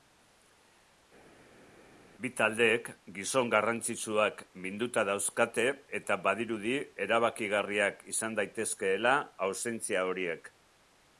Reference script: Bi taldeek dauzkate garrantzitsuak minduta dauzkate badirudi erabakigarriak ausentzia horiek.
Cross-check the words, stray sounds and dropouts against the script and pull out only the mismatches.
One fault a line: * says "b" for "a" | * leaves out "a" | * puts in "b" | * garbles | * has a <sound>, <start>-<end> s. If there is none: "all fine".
* says "gizon" for "dauzkate"
* puts in "eta"
* puts in "izan daitezkeela"